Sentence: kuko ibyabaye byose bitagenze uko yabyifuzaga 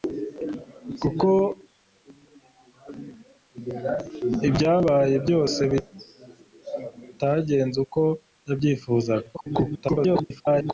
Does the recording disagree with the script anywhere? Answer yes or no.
yes